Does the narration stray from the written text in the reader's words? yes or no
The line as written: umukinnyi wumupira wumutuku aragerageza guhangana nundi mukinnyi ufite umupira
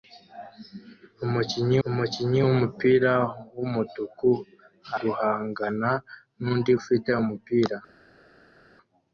yes